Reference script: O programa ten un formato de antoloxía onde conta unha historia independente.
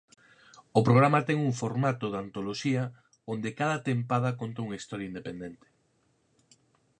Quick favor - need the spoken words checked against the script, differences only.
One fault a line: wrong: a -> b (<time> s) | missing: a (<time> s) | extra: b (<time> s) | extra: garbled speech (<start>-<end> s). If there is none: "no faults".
extra: cada tempada (3.6 s)